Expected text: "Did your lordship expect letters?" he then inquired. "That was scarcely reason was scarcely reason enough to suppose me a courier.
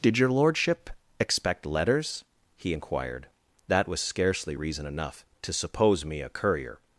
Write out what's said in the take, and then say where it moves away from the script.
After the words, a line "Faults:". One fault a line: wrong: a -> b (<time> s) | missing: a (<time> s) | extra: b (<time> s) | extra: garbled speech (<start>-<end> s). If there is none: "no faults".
"Did your lordship expect letters?" he inquired. "That was scarcely reason enough to suppose me a courier.
Faults:
missing: then (2.7 s)
missing: was scarcely reason (4.9 s)